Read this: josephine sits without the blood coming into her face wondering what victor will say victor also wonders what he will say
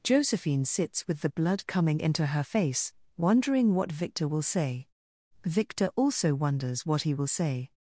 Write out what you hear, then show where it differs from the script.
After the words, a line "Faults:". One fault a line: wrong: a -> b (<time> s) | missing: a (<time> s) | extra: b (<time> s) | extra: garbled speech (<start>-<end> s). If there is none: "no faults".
josephine sits with the blood coming into her face wondering what victor will say victor also wonders what he will say
Faults:
wrong: without -> with (1.1 s)